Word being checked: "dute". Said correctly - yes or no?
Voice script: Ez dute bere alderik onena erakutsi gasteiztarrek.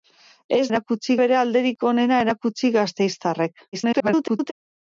no